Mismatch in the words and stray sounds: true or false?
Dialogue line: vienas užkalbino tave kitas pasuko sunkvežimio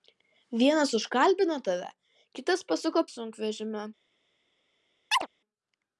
true